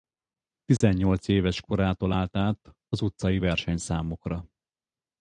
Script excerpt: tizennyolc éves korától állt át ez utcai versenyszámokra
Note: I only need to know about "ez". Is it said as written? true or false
false